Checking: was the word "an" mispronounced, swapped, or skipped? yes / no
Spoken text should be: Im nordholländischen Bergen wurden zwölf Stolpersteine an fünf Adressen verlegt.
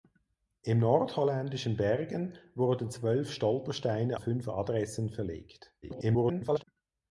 yes